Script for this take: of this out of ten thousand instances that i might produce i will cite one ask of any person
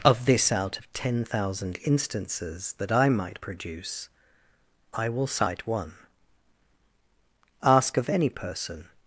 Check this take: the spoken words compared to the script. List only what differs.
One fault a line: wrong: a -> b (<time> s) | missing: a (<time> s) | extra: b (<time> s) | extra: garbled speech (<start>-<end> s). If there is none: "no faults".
no faults